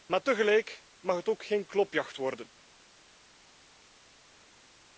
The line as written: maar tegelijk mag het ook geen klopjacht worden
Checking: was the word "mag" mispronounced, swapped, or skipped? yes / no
no